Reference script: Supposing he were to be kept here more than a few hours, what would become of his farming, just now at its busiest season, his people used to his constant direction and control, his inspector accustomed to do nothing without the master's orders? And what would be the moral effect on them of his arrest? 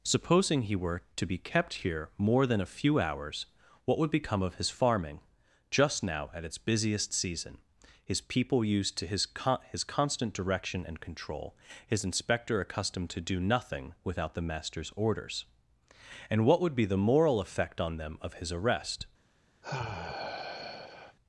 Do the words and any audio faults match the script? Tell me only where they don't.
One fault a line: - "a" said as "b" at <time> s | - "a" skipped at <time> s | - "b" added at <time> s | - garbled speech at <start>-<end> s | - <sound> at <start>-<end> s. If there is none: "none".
- "con his" added at 9.3 s
- sigh at 19.6-21.2 s